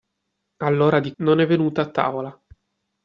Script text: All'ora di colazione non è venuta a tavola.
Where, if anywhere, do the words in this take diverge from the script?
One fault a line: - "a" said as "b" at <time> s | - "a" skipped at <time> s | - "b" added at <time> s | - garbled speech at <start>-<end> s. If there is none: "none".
- "colazione" skipped at 1.1 s